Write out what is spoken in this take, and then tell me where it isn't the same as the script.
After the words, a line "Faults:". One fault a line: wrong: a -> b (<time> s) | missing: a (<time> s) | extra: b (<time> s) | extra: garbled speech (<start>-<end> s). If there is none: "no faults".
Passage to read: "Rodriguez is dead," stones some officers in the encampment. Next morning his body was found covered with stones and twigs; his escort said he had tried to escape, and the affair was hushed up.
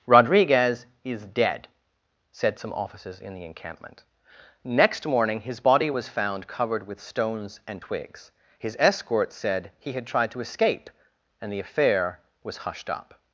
"Rodriguez is dead," said some officers in the encampment. Next morning his body was found covered with stones and twigs; his escort said he had tried to escape, and the affair was hushed up.
Faults:
wrong: stones -> said (2.3 s)